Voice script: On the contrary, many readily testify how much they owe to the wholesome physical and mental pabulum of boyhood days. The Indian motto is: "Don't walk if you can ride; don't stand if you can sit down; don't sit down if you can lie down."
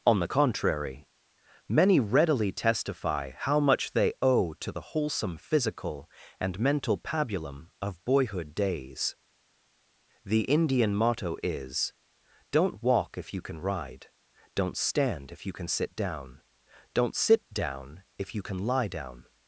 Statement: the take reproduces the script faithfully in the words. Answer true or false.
true